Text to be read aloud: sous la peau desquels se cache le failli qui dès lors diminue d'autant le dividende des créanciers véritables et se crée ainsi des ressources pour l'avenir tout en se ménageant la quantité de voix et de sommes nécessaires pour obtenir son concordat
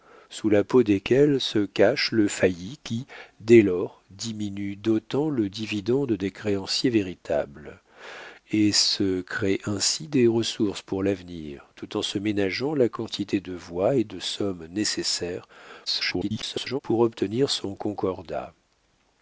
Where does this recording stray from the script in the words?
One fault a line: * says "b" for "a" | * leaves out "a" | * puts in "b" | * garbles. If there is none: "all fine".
* garbles